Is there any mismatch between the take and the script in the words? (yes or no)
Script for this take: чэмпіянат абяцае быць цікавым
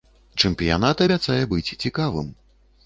no